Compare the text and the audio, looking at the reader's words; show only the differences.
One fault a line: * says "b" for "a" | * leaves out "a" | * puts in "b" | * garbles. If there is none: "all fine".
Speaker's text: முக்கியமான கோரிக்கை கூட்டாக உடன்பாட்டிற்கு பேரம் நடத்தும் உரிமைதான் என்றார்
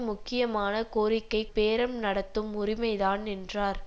* leaves out "கூட்டாக உடன்பாட்டிற்கு"